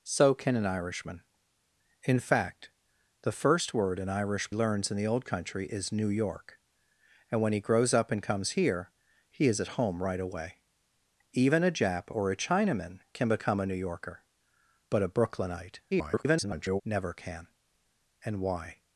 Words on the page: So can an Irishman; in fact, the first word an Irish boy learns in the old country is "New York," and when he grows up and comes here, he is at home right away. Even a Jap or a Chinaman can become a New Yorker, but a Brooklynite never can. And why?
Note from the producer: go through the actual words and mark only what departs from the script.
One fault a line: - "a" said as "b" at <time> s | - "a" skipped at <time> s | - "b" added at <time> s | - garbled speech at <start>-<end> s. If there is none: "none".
- "boy" skipped at 4.5 s
- garbled speech at 15.9-16.8 s